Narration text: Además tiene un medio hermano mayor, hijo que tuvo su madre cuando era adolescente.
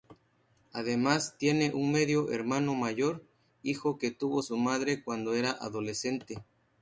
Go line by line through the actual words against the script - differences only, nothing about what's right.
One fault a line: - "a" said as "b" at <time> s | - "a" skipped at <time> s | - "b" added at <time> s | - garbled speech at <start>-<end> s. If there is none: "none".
none